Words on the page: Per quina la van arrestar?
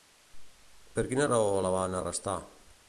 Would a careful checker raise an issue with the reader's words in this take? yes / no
yes